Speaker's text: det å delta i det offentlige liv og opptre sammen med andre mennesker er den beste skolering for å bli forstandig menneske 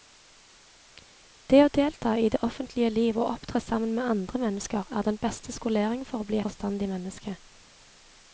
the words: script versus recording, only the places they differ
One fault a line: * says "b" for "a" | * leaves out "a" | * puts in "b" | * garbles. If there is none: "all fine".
all fine